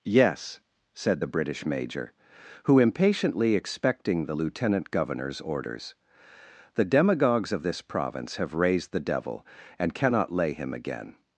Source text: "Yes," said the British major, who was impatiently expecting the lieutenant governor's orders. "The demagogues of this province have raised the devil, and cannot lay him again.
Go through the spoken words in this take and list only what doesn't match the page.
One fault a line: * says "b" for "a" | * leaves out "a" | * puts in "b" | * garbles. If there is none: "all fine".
* leaves out "was"